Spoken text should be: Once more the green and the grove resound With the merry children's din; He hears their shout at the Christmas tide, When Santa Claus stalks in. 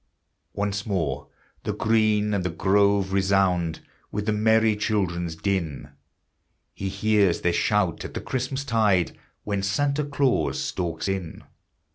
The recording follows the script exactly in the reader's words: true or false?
true